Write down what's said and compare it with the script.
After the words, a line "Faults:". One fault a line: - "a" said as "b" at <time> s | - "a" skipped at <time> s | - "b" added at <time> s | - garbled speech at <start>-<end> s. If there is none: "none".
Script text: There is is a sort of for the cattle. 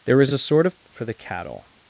There is is a sort of for the cattle.
Faults:
none